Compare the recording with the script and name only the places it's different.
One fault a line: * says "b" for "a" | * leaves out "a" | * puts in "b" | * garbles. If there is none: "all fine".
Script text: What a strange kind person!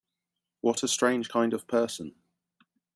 * puts in "of"